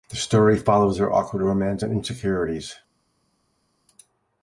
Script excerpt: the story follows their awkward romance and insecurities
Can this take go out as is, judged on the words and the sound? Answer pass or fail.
pass